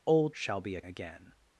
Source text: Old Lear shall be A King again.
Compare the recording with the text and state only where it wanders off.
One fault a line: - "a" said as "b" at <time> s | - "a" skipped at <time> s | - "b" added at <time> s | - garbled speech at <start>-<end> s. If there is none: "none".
- "Lear" skipped at 0.3 s
- "King" skipped at 0.8 s